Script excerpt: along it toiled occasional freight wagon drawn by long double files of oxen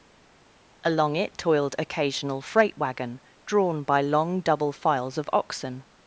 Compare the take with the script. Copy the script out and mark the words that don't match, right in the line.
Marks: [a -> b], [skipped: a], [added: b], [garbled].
along it toiled occasional freight wagon drawn by long double files of oxen